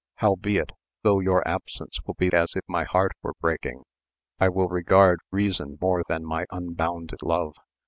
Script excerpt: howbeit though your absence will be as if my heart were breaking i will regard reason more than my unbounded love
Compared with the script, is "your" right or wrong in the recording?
right